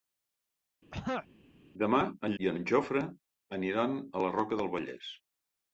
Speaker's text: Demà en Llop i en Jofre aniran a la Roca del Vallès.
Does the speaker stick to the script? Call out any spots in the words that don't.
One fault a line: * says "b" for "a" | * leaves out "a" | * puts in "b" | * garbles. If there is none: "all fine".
* leaves out "Llop"